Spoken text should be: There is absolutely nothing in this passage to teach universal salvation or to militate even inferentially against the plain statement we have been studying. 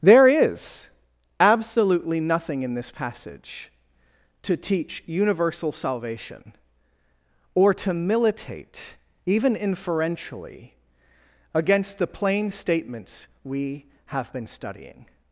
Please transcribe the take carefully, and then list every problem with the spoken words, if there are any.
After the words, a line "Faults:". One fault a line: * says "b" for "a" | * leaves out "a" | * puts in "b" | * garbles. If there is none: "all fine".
There is absolutely nothing in this passage to teach universal salvation or to militate even inferentially against the plain statements we have been studying.
Faults:
* says "statements" for "statement"